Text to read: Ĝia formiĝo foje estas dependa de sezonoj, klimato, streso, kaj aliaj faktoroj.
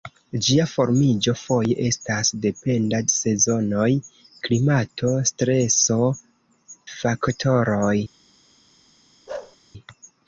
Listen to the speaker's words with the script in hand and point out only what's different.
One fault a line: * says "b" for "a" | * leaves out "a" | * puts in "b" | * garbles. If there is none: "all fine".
* leaves out "de"
* leaves out "kaj aliaj"